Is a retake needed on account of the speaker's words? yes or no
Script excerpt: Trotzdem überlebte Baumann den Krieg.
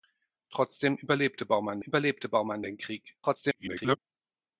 yes